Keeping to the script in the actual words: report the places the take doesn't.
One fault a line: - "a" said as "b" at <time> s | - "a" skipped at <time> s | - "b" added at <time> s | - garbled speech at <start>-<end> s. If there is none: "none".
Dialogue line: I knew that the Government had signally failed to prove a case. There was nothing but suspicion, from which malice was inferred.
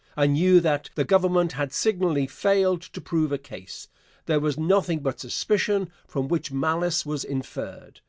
none